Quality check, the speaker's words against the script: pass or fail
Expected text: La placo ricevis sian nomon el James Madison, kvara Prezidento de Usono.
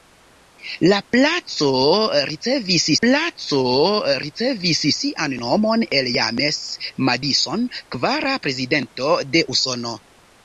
fail